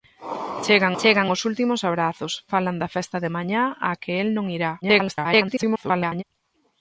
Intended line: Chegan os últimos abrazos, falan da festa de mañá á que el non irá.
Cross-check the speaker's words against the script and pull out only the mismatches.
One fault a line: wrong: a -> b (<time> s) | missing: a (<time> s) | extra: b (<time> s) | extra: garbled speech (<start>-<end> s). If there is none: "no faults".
extra: chegan (1.0 s)
extra: garbled speech (4.8-6.2 s)